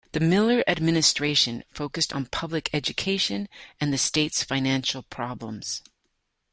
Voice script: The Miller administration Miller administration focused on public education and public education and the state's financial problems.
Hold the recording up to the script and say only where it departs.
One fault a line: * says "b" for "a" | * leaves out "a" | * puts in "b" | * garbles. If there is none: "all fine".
* leaves out "Miller administration"
* leaves out "public education and"